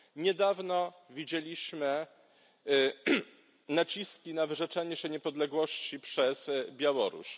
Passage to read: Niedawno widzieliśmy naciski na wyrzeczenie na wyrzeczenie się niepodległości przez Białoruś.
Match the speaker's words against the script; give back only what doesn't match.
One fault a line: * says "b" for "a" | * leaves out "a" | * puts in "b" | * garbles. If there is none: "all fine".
* leaves out "na wyrzeczenie"